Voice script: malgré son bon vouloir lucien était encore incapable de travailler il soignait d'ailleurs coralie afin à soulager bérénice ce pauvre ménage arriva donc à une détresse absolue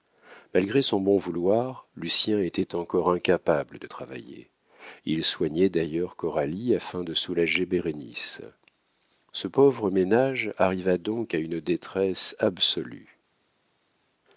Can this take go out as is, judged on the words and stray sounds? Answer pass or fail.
fail